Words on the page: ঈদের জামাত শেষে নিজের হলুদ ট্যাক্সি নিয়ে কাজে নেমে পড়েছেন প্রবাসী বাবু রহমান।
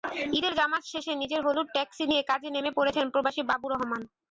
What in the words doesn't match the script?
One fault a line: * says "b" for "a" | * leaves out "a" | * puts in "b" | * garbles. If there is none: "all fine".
all fine